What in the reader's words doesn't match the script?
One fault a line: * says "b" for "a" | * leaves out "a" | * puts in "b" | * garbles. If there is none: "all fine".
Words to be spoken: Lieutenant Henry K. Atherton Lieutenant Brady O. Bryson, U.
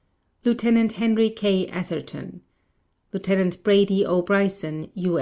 all fine